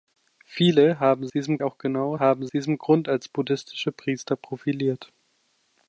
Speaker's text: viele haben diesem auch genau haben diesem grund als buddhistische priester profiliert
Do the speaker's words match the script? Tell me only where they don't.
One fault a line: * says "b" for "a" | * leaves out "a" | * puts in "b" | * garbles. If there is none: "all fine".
all fine